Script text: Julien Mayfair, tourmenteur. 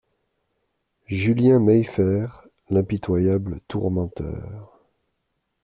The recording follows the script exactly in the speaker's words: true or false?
false